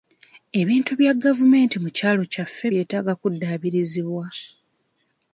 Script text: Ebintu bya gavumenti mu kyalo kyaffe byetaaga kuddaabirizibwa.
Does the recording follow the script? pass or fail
pass